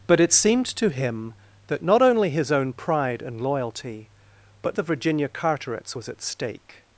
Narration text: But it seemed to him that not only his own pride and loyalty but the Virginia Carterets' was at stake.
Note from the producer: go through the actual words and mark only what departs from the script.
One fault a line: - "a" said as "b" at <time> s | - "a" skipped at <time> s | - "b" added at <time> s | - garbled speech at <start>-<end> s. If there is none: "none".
none